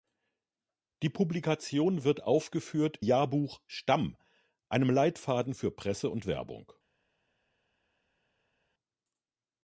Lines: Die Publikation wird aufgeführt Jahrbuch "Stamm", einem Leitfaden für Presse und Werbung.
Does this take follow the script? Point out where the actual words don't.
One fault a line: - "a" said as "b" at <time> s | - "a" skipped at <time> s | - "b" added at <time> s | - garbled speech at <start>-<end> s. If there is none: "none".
none